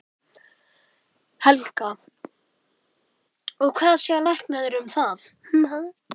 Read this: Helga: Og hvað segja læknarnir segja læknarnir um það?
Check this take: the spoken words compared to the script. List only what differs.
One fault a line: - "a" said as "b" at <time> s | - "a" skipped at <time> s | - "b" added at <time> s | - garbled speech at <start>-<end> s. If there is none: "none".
- "segja læknarnir" skipped at 4.8 s